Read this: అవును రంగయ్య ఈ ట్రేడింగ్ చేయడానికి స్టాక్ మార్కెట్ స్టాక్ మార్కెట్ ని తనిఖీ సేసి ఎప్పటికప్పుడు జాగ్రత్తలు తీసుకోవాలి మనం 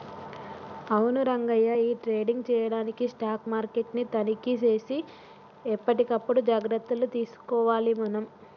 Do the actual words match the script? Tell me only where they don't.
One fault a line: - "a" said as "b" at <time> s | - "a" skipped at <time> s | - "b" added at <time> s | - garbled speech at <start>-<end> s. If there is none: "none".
- "స్టాక్ మార్కెట్" skipped at 3.9 s